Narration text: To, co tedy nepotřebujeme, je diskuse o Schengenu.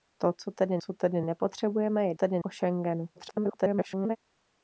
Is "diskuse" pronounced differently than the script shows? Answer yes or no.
yes